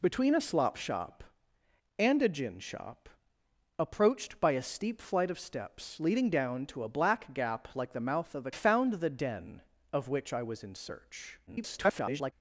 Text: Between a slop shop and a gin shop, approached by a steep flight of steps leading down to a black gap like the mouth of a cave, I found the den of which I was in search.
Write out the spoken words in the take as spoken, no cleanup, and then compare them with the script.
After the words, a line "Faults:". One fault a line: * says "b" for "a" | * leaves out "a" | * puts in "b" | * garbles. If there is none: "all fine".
Between a slop shop and a gin shop, approached by a steep flight of steps leading down to a black gap like the mouth of a found the den of which I was in search. [garbled]
Faults:
* leaves out "cave I"
* garbles